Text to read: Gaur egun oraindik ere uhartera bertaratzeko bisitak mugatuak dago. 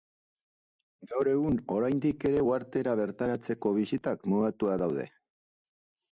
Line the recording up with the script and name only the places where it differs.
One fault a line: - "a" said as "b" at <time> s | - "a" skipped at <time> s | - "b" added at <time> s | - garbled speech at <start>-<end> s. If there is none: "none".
- "dago" said as "daude" at 4.8 s